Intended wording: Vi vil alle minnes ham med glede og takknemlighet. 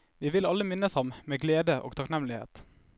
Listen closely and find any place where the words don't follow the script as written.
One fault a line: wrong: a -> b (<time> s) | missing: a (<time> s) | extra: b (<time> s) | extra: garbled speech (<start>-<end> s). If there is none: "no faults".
no faults